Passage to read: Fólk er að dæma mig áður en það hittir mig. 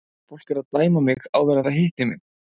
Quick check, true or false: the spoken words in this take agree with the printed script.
true